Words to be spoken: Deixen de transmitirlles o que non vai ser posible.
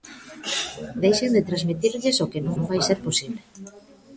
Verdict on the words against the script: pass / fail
fail